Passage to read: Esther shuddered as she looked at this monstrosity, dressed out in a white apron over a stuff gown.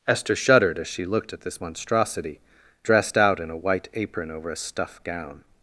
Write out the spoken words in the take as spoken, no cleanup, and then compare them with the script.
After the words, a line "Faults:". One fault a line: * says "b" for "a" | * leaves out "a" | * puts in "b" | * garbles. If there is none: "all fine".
Esther shuddered as she looked at this monstrosity, dressed out in a white apron over a stuff gown.
Faults:
all fine